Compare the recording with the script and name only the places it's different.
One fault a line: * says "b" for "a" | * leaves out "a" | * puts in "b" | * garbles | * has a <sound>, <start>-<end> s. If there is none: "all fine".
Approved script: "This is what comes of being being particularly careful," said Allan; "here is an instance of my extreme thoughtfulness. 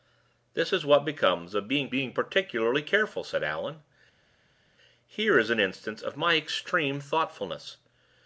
all fine